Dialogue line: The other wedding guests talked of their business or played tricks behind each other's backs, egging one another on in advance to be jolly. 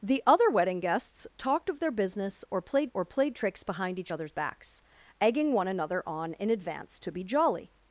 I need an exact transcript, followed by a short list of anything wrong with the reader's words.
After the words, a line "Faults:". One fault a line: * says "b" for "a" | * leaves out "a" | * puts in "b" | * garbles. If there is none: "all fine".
The other wedding guests talked of their business or played or played tricks behind each other's backs, egging one another on in advance to be jolly.
Faults:
* puts in "or played"